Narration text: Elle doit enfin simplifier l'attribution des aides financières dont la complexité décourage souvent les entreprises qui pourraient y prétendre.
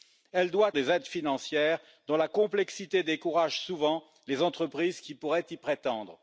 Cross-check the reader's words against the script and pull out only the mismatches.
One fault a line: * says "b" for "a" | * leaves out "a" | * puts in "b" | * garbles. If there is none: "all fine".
* leaves out "enfin simplifier l'attribution"